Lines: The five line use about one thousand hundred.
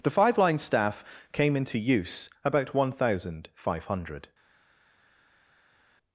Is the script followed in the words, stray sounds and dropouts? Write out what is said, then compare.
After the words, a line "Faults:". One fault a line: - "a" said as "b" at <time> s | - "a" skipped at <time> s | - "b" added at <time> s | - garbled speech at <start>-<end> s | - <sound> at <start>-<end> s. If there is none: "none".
The five line staff came into use about one thousand five hundred.
Faults:
- "staff came into" added at 0.6 s
- "five" added at 3.5 s